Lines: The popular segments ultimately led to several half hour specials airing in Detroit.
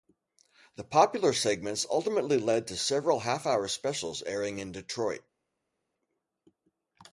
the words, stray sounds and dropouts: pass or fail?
pass